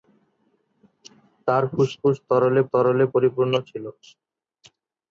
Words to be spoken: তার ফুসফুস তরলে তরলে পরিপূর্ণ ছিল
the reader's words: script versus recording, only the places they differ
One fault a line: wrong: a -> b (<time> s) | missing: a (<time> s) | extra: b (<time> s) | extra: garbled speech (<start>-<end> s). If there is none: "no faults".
no faults